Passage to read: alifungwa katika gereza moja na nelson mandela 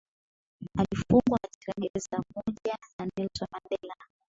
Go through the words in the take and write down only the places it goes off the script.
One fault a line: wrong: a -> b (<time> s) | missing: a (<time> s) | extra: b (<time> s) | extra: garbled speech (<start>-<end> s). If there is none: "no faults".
no faults